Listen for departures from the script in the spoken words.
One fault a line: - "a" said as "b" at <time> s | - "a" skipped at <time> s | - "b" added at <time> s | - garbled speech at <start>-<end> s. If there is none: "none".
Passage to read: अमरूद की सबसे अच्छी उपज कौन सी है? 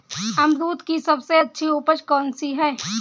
none